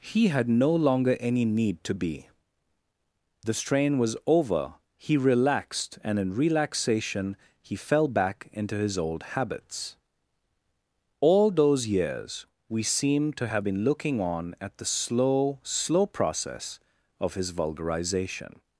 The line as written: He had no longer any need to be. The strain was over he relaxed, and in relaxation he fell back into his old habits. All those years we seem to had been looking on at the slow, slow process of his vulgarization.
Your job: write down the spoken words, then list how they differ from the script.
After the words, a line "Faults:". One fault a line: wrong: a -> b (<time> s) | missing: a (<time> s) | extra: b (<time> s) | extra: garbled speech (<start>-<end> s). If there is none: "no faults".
He had no longer any need to be. The strain was over he relaxed, and in relaxation he fell back into his old habits. All those years we seem to have been looking on at the slow, slow process of his vulgarization.
Faults:
wrong: had -> have (13.5 s)